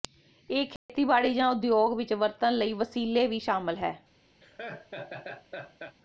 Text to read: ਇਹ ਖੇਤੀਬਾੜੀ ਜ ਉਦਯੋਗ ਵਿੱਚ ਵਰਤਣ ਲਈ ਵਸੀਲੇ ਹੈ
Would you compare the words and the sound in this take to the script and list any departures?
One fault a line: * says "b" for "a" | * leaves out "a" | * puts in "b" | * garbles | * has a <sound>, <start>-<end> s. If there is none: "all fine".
* has a dropout, 0.8-0.9 s
* puts in "ਵੀ ਸ਼ਾਮਲ"
* has a laugh, 4.4-6.0 s